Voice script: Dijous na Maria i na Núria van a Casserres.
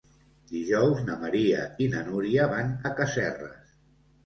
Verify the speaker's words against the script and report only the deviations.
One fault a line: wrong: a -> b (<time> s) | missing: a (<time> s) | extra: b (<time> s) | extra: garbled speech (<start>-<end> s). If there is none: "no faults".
no faults